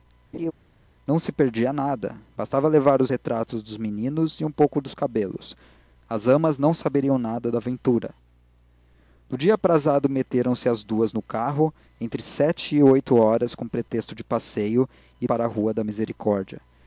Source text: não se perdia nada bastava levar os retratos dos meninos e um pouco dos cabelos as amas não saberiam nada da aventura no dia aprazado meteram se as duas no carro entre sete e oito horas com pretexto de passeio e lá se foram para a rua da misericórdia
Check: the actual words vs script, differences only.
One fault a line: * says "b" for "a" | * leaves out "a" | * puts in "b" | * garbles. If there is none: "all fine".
* leaves out "lá se foram"